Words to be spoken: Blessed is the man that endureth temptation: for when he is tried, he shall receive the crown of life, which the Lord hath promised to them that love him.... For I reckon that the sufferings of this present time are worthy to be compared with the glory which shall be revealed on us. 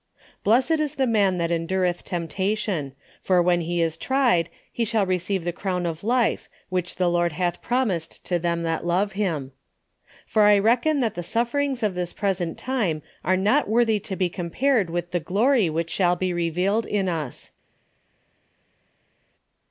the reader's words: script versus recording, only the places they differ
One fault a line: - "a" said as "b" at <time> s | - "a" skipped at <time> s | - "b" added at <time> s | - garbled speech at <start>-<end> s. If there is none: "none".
- "not" added at 13.3 s
- "on" said as "in" at 16.8 s